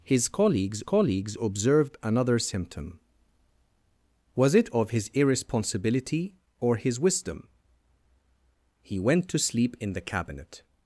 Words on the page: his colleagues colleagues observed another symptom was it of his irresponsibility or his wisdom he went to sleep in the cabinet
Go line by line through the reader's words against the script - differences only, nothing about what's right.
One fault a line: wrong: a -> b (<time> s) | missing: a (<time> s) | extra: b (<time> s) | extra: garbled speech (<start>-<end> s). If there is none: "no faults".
no faults